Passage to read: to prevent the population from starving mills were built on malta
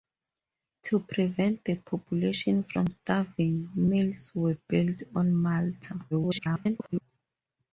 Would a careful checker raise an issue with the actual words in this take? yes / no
yes